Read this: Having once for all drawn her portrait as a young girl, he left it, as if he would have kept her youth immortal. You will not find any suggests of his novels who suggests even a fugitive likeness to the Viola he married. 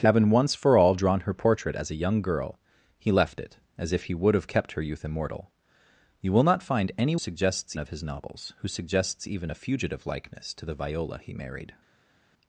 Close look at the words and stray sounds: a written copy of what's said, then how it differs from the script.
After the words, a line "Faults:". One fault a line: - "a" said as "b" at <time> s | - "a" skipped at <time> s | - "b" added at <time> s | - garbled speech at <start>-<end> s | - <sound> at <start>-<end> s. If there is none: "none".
Having once for all drawn her portrait as a young girl, he left it, as if he would have kept her youth immortal. You will not find any suggests of his novels who suggests even a fugitive likeness to the Viola he married.
Faults:
none